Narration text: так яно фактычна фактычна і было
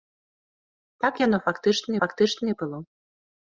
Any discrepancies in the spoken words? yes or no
no